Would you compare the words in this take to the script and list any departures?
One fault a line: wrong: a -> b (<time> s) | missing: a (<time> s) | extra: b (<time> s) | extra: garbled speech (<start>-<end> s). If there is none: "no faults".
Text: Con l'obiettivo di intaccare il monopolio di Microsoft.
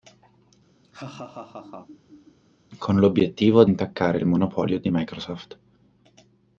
missing: di (3.6 s)